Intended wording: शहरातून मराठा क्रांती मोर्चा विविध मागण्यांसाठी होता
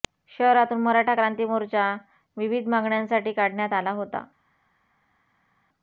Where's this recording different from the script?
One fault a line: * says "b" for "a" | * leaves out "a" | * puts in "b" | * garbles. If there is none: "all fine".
* puts in "काढण्यात आला"